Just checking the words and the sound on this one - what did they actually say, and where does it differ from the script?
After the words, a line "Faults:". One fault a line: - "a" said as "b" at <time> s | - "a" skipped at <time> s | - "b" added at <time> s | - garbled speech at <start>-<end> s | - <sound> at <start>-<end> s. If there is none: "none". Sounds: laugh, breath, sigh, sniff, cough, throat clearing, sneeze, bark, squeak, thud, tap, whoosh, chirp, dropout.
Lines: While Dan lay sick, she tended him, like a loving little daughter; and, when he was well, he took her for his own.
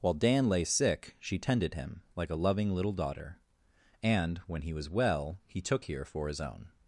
While Dan lay sick, she tended him, like a loving little daughter; and, when he was well, he took here for his own.
Faults:
- "her" said as "here" at 5.8 s